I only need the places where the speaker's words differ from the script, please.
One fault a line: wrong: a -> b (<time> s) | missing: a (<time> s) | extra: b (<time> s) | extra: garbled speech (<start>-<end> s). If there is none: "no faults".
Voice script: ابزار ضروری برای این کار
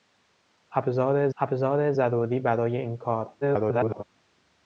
extra: ابزار (1.4 s)
extra: garbled speech (3.4-4.0 s)